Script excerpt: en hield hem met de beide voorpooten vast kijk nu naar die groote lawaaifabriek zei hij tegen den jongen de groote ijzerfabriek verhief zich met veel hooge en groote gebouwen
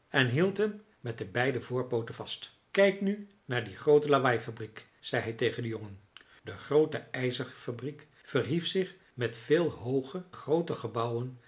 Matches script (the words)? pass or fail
fail